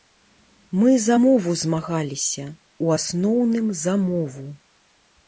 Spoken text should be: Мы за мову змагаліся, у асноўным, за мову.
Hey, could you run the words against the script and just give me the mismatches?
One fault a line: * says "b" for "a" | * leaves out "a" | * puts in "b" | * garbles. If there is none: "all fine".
all fine